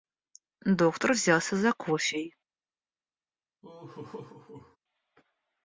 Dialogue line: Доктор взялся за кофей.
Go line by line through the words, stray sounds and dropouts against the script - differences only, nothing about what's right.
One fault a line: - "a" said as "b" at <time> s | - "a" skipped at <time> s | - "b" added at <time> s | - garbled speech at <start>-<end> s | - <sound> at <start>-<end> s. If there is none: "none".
- laugh at 3.6-4.8 s